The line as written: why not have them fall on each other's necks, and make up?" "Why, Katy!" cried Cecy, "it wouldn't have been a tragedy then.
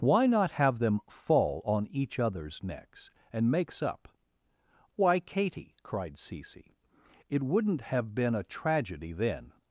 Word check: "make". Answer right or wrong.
wrong